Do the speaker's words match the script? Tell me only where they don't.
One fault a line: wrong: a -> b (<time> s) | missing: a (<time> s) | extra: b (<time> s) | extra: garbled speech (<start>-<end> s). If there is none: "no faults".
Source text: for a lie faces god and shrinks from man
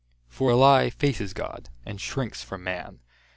no faults